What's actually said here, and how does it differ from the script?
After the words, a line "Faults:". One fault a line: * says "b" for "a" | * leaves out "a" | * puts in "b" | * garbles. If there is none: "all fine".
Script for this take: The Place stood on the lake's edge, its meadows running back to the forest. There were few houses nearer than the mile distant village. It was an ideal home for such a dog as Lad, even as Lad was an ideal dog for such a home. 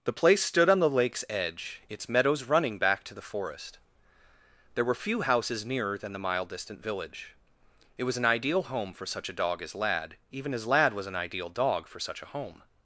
The Place stood on the lake's edge, its meadows running back to the forest. There were few houses nearer than the mile distant village. It was an ideal home for such a dog as Lad, even as Lad was an ideal dog for such a home.
Faults:
all fine